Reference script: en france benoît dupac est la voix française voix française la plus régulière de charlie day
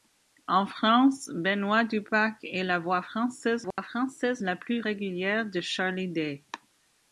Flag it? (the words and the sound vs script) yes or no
yes